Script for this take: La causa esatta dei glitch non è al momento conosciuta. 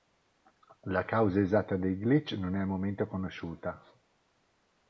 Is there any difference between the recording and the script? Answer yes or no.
no